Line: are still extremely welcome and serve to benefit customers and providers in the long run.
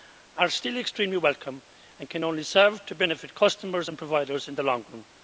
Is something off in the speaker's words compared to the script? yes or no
yes